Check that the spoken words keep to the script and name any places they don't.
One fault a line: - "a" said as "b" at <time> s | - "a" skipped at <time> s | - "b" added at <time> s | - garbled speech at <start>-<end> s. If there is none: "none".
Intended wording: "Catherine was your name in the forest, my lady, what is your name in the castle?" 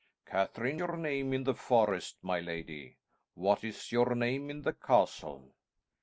- "was" skipped at 0.8 s